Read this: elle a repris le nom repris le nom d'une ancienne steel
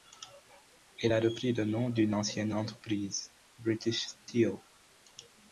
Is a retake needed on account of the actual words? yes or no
yes